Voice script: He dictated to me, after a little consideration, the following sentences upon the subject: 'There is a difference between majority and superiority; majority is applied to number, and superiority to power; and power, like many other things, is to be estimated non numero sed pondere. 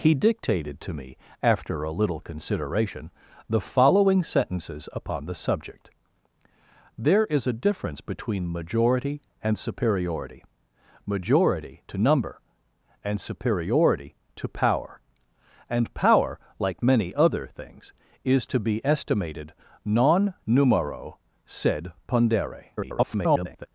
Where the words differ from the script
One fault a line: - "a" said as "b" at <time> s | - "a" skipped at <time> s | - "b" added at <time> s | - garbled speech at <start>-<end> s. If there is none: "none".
- "is applied" skipped at 11.8 s
- garbled speech at 22.8-23.7 s